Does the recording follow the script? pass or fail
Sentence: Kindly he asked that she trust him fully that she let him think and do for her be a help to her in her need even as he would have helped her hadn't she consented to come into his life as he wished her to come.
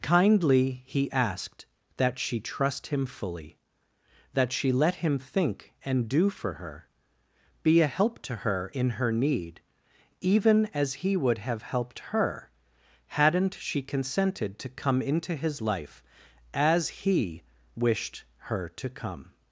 pass